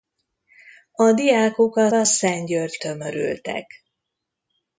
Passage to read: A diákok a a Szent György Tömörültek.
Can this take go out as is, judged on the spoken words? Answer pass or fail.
pass